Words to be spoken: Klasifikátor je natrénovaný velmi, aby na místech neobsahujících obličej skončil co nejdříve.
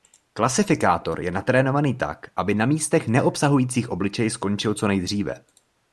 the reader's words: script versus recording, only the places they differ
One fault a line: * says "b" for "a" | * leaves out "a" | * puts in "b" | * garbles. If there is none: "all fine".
* says "tak" for "velmi"